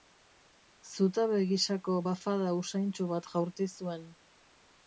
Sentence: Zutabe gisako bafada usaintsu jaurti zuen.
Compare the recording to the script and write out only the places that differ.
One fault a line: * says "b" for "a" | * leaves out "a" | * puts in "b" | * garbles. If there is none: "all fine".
* puts in "bat"